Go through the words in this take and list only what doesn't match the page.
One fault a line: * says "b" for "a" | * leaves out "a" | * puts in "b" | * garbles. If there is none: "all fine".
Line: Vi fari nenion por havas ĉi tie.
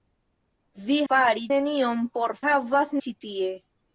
all fine